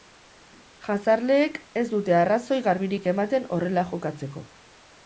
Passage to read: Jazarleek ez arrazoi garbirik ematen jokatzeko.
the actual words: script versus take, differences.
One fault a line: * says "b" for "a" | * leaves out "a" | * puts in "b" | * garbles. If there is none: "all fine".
* puts in "dute"
* puts in "horrela"